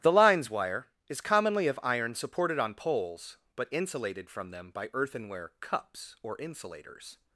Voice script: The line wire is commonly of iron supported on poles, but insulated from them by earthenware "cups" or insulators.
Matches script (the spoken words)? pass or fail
fail